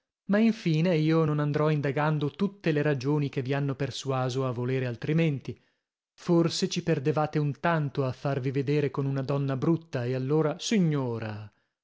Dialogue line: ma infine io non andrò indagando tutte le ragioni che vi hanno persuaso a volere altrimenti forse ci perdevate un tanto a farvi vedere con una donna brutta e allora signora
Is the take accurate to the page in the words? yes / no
yes